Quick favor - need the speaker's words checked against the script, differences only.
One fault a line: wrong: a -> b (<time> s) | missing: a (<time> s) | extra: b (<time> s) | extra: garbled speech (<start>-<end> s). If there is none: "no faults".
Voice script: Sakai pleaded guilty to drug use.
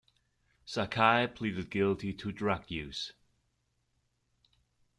no faults